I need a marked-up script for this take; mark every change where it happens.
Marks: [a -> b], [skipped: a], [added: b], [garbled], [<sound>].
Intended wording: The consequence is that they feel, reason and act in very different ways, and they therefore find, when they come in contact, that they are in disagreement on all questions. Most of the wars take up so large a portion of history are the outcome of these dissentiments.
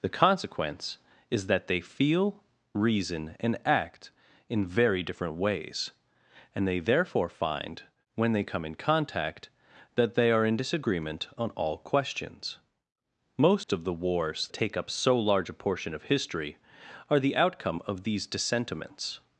The consequence is that they feel, reason and act in very different ways, and they therefore find, when they come in contact, that they are in disagreement on all questions. Most [dropout] of the wars take up so large a portion of history are the outcome of these dissentiments.